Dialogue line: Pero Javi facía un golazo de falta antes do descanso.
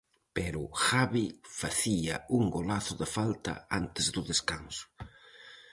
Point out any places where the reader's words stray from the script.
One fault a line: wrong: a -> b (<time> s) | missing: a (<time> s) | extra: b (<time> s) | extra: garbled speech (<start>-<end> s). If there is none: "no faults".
no faults